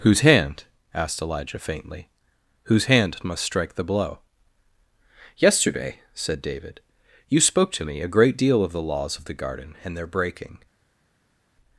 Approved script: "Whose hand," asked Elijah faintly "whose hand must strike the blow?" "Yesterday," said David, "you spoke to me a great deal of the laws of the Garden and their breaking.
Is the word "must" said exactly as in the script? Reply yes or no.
yes